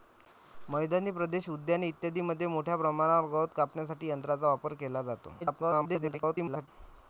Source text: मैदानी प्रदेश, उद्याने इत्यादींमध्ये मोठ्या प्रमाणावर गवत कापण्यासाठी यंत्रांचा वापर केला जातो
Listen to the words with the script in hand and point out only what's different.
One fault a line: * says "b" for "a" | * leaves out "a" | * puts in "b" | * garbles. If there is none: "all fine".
* garbles